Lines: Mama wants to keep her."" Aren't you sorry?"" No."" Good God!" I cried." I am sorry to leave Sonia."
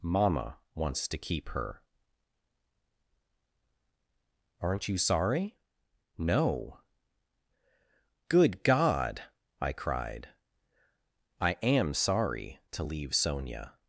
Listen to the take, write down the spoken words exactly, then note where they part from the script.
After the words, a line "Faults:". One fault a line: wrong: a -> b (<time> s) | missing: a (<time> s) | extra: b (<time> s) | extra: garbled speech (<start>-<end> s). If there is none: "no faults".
Mama wants to keep her."" Aren't you sorry?"" No."" Good God!" I cried." I am sorry to leave Sonia."
Faults:
no faults